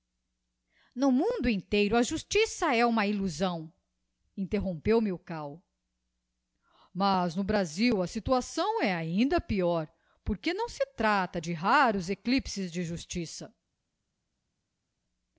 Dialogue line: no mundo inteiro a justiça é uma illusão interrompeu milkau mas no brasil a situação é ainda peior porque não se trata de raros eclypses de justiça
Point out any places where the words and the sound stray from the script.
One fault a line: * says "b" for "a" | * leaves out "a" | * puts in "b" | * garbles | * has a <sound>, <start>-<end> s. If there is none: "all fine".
all fine